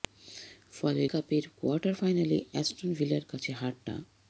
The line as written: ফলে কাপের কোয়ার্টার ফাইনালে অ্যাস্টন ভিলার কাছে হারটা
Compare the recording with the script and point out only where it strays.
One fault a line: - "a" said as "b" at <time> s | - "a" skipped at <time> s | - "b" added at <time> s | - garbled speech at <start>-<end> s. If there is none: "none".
none